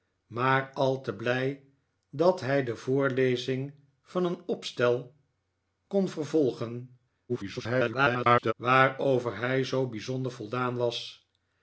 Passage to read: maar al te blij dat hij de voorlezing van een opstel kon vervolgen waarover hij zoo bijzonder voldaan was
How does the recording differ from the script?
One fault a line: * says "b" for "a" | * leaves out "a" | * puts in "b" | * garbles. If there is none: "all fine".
* garbles